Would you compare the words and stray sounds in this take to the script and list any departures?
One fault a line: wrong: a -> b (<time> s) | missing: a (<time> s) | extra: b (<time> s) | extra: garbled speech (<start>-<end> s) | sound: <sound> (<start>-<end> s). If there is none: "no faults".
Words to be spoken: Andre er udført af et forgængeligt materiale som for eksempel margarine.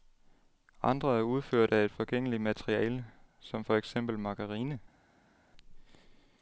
no faults